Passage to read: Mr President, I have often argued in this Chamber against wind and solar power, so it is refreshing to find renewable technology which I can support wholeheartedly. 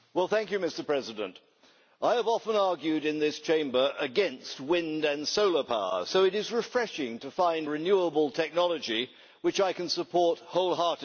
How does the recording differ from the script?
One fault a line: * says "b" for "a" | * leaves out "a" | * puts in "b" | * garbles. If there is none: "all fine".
all fine